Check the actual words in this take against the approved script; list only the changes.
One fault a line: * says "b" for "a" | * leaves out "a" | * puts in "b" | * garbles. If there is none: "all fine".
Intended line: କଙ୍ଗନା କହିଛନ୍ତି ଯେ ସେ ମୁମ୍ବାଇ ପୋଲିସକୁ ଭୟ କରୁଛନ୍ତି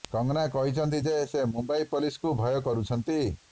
all fine